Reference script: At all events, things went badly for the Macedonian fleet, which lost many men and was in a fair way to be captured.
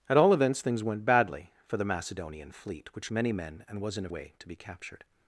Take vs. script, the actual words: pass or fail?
fail